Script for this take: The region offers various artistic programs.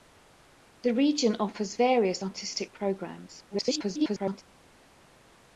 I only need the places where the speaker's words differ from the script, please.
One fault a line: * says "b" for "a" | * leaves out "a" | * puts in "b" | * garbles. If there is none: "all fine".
* garbles